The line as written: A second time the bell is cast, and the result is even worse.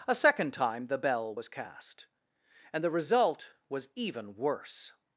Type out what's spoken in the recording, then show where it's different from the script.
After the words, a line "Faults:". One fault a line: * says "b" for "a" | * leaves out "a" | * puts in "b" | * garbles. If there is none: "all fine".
A second time the bell was cast, and the result was even worse.
Faults:
* says "was" for "is"
* says "was" for "is"